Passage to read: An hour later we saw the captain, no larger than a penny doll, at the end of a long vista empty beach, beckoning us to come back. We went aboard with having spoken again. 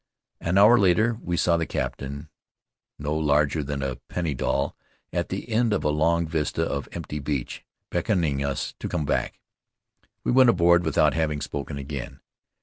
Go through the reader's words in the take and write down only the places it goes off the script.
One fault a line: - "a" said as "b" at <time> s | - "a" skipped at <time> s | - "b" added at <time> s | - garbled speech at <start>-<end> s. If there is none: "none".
- "of" added at 6.7 s
- "with" said as "without" at 10.8 s